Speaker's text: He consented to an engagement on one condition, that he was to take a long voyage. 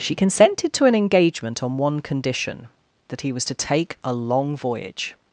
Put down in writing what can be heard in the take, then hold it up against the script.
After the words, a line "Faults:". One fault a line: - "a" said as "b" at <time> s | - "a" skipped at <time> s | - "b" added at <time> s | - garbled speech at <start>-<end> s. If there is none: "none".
She consented to an engagement on one condition, that he was to take a long voyage.
Faults:
- "He" said as "She" at 0.0 s